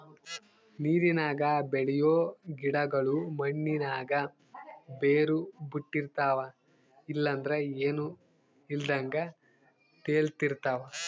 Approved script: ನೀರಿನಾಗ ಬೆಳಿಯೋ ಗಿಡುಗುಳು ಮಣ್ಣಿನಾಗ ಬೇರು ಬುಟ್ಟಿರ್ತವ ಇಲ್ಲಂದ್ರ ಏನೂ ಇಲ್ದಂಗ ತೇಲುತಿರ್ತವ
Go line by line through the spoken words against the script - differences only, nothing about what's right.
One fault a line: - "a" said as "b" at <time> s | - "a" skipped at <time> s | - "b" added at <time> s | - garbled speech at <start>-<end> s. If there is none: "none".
none